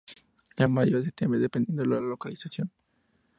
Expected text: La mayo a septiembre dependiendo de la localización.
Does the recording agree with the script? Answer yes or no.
yes